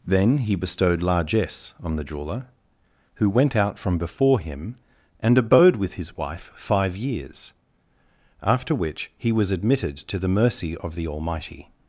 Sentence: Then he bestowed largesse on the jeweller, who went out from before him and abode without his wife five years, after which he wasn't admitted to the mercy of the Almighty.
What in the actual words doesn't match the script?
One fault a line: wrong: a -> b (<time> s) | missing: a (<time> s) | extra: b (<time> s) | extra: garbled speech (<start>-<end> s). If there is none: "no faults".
wrong: without -> with (5.8 s)
wrong: wasn't -> was (9.3 s)